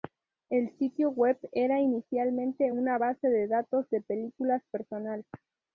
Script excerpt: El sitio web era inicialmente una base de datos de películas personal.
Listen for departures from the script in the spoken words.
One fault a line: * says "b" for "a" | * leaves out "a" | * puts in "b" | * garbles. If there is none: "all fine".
all fine